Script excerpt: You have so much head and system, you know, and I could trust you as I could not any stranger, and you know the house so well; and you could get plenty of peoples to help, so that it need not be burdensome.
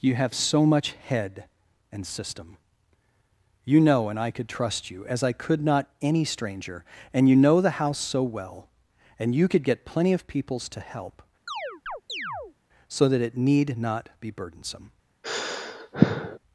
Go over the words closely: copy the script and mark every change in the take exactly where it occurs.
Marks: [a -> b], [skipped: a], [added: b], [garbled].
You have so much head and system, you know, and I could trust you as I could not any stranger, and you know the house so well; and you could get plenty of peoples to help, so that it need not be burdensome.